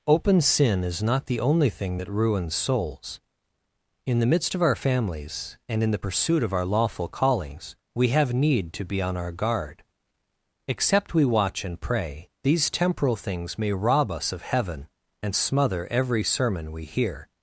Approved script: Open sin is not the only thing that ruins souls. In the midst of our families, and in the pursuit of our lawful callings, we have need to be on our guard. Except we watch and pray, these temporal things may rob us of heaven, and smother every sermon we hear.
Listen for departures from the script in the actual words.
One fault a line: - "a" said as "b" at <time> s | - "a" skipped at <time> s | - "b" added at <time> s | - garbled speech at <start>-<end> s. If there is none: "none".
none